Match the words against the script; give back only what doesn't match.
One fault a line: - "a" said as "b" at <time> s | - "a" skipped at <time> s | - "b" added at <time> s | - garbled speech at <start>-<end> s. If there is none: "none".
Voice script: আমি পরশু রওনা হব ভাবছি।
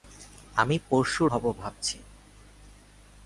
- "রওনা" skipped at 1.2 s